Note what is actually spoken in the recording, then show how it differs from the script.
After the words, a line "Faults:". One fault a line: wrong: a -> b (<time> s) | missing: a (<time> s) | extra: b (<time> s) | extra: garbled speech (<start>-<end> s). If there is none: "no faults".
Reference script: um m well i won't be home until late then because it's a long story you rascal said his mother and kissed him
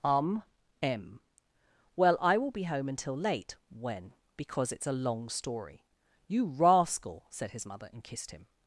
um m well i will be home until late when because it's a long story you rascal said his mother and kissed him
Faults:
wrong: won't -> will (2.4 s)
wrong: then -> when (3.7 s)